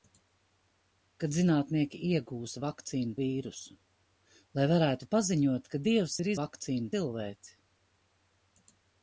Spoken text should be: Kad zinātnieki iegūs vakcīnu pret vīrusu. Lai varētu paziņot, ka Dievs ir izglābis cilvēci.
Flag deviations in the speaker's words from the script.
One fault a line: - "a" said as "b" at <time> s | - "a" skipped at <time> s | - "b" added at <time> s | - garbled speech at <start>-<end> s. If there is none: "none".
- "pret" skipped at 3.1 s
- "izglābis" said as "vakcīnu" at 6.4 s